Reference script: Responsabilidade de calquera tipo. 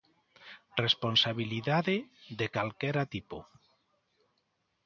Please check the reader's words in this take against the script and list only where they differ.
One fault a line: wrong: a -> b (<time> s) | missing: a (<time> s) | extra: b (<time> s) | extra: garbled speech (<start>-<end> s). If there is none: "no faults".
no faults